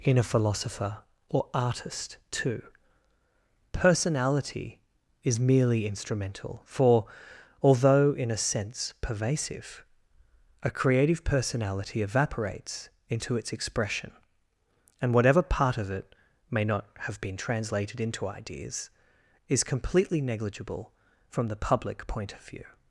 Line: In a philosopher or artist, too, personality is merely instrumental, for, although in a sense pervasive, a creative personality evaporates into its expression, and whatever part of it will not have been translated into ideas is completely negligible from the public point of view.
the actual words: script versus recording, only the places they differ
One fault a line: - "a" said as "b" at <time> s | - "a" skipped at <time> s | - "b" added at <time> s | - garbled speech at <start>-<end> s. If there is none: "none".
- "will" said as "may" at 16.5 s